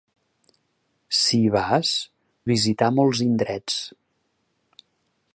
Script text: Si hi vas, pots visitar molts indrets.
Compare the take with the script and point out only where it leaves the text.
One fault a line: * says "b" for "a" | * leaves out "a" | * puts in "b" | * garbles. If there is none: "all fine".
* leaves out "pots"